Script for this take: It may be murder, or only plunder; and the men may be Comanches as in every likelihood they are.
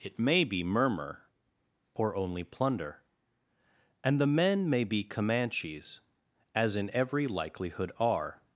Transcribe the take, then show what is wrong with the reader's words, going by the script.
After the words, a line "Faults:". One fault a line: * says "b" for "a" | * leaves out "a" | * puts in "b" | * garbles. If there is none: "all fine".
It may be murmur, or only plunder; and the men may be Comanches as in every likelihood are.
Faults:
* says "murmur" for "murder"
* leaves out "they"